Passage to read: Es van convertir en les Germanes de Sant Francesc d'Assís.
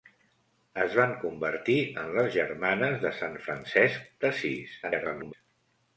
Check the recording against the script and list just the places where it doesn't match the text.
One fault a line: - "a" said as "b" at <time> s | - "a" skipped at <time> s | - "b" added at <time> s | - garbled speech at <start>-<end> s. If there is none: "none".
- garbled speech at 4.8-5.3 s